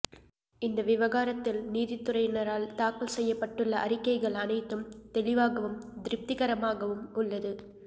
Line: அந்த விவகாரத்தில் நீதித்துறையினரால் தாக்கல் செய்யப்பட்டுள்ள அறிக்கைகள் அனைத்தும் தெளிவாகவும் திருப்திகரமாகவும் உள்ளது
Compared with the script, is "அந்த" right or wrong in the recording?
wrong